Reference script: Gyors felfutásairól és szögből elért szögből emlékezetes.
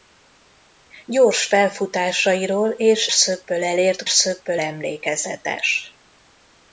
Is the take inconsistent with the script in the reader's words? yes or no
no